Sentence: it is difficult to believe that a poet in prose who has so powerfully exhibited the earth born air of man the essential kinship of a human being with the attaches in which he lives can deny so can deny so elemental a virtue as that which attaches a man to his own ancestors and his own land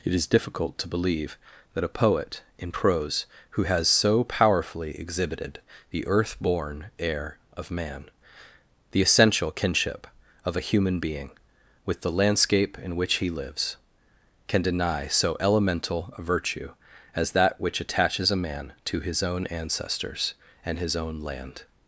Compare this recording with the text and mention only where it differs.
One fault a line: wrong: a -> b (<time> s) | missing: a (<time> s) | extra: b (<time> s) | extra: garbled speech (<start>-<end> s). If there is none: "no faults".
wrong: attaches -> landscape (12.1 s)
missing: can deny so (15.3 s)